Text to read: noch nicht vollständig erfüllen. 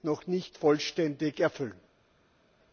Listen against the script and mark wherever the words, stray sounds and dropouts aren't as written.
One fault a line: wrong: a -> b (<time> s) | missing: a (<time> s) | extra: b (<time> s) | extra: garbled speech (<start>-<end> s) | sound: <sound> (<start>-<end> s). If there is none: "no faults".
no faults